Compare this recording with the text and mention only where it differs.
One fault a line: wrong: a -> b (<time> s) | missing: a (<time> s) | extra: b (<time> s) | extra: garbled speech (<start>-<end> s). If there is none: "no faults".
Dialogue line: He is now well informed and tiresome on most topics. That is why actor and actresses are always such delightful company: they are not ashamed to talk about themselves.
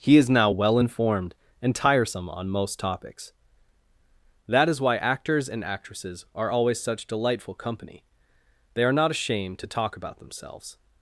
wrong: actor -> actors (5.0 s)